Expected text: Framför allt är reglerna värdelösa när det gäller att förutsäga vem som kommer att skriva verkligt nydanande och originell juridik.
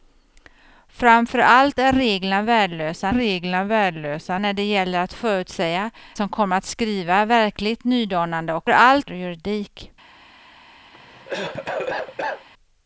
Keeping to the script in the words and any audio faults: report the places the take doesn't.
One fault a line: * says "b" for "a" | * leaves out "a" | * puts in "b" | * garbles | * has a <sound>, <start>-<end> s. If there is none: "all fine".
* puts in "reglerna värdelösa"
* leaves out "vem"
* says "allt" for "originell"
* has a cough, 10.9-12.5 s